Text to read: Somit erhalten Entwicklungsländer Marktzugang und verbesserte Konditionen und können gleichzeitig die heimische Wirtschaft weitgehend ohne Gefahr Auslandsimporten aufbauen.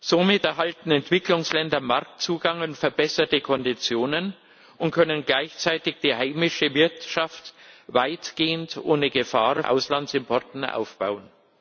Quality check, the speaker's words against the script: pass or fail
pass